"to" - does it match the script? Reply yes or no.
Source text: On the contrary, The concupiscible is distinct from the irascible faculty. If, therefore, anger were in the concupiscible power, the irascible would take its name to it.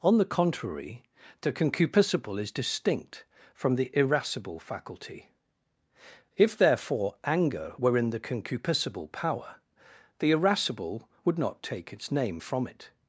no